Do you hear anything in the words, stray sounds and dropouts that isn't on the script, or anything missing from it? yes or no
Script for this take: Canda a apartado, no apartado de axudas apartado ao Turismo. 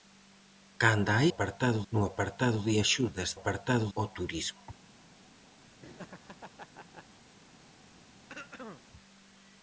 yes